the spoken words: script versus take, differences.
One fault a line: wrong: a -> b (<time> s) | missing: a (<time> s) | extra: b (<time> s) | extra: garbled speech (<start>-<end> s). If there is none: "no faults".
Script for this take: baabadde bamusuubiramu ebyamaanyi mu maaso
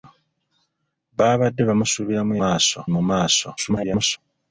wrong: ebyamaanyi -> maaso (2.4 s)
extra: garbled speech (3.6-4.2 s)